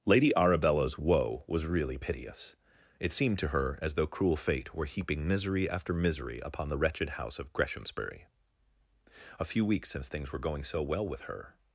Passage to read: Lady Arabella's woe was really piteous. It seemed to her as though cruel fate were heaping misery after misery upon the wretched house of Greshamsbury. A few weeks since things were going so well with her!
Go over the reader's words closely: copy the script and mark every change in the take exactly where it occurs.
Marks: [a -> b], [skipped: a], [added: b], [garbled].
Lady Arabella's woe was really piteous. It seemed to her as though cruel fate were heaping misery after misery upon the wretched house of Greshamsbury. A few weeks since things were going so well with her!